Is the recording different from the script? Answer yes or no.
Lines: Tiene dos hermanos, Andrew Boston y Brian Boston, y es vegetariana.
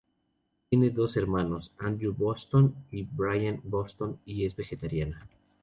no